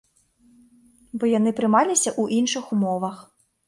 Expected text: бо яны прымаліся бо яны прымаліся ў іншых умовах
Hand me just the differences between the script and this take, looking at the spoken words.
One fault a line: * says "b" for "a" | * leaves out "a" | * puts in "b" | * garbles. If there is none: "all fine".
* leaves out "бо яны прымаліся"